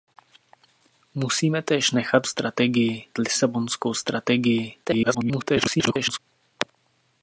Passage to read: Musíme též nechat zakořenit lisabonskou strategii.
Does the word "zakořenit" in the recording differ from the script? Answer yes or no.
yes